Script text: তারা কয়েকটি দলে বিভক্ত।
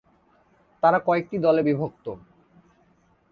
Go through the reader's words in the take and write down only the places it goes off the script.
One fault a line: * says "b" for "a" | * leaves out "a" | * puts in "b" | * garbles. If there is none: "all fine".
all fine